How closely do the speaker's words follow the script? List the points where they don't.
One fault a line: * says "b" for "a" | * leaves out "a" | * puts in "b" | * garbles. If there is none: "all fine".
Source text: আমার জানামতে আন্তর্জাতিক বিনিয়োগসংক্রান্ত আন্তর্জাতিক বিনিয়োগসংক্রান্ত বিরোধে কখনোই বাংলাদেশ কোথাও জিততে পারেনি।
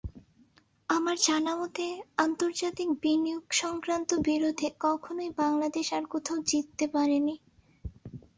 * leaves out "আন্তর্জাতিক বিনিয়োগসংক্রান্ত"
* puts in "আর"